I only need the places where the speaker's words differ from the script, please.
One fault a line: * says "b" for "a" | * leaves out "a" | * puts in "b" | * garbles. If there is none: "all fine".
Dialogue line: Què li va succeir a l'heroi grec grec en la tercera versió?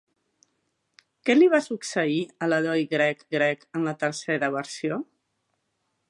all fine